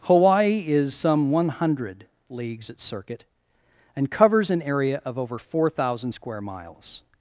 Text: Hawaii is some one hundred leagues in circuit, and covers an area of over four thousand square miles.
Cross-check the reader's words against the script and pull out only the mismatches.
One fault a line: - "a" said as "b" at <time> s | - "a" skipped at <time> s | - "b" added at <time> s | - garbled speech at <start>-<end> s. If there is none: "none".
- "in" said as "at" at 2.7 s